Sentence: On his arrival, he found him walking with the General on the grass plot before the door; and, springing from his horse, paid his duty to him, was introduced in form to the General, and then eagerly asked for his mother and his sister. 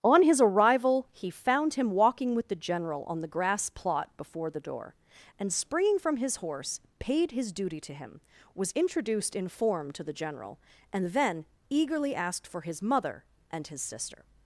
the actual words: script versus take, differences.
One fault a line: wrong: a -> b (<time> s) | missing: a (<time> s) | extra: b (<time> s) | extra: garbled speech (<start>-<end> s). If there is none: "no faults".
no faults